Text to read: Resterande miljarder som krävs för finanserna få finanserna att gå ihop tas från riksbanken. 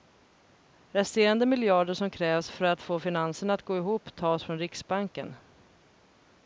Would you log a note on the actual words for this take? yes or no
yes